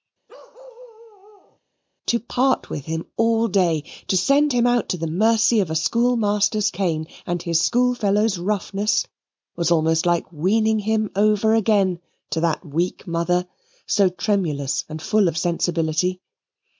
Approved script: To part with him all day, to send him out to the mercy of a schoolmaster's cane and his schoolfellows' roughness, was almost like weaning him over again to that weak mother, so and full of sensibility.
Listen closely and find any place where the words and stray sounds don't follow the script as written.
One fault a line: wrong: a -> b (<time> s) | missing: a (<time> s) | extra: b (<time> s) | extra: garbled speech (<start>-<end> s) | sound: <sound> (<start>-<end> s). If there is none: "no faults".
sound: bark (0.3-1.6 s)
extra: tremulous (14.1 s)